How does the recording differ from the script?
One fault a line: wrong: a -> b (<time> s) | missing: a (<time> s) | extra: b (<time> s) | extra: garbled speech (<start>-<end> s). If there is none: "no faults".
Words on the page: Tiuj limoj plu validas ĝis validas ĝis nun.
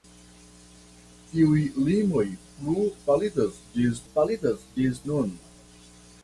no faults